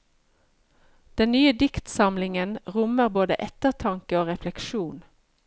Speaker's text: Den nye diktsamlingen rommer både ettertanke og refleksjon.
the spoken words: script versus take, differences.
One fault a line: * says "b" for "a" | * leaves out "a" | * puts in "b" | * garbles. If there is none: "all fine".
all fine